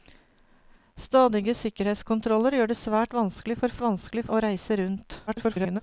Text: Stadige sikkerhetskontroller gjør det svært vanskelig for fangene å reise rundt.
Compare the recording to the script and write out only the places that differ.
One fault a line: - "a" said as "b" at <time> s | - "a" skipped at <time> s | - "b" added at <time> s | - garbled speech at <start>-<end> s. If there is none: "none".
- "fangene" said as "vanskelig" at 3.8 s
- garbled speech at 5.3-5.8 s